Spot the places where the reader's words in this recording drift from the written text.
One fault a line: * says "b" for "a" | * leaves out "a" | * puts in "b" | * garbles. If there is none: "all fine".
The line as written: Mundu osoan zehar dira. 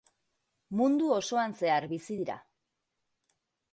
* puts in "bizi"